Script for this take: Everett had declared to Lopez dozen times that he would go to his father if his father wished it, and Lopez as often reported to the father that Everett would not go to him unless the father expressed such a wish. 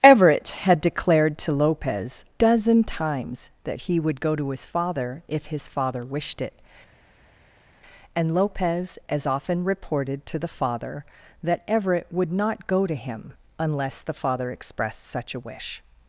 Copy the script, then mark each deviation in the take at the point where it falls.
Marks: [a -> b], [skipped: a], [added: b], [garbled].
Everett had declared to Lopez dozen times that he would go to his father if his father wished it, and Lopez as often reported to the father that Everett would not go to him unless the father expressed such a wish.